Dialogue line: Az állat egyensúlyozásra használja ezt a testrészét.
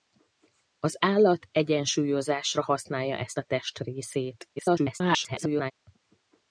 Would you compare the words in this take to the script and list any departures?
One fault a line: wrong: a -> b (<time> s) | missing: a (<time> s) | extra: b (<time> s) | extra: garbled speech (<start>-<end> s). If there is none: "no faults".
extra: garbled speech (4.6-5.7 s)